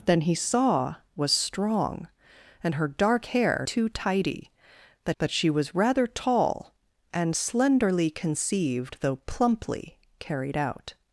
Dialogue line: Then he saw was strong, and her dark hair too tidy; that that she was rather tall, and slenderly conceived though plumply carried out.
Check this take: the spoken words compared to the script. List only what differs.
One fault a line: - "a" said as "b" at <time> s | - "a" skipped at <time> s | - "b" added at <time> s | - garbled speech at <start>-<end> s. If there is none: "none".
none